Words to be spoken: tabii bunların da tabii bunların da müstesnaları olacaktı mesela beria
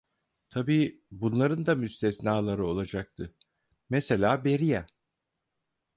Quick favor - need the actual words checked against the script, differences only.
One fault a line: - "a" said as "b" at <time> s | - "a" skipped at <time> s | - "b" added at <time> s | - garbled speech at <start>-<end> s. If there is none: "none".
- "tabii bunların da" skipped at 1.8 s